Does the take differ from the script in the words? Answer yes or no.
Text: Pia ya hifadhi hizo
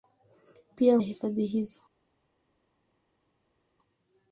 no